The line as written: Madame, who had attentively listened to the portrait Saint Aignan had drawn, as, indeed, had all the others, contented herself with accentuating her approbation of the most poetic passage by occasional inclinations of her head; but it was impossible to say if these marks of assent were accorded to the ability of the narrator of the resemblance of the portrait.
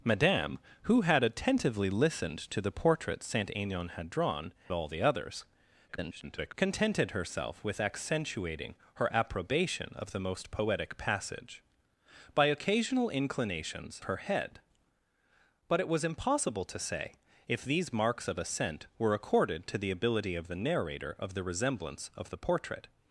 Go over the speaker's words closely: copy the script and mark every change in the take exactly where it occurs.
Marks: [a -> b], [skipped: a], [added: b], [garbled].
Madame, who had attentively listened to the portrait Saint Aignan had drawn, [skipped: as, indeed, had] all the others, [garbled] contented herself with accentuating her approbation of the most poetic passage by occasional inclinations [skipped: of] her head; but it was impossible to say if these marks of assent were accorded to the ability of the narrator of the resemblance of the portrait.